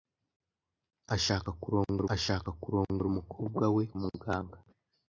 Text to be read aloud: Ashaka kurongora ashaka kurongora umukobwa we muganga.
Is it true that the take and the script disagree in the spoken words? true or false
false